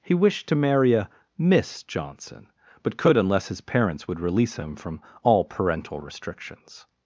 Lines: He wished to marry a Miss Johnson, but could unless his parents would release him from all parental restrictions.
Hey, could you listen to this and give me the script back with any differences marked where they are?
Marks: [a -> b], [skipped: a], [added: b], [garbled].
He wished to marry a Miss Johnson, but could unless his parents would release him from all parental restrictions.